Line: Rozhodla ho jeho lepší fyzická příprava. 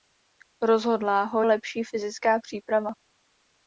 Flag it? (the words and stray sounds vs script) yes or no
yes